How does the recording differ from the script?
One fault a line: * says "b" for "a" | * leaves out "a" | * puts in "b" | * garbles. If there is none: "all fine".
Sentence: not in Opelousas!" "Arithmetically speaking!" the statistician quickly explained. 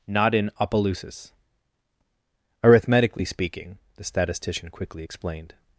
all fine